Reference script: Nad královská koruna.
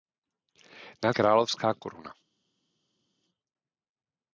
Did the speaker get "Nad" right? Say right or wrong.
right